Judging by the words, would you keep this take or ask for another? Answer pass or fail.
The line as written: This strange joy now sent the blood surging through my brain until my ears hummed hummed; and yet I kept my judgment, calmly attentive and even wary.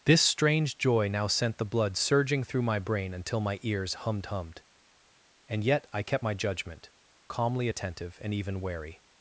pass